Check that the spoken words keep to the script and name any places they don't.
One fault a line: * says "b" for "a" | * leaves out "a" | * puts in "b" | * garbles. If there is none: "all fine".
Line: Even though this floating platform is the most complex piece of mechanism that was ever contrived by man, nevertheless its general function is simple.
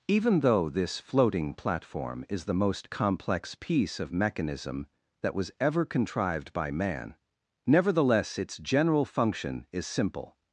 all fine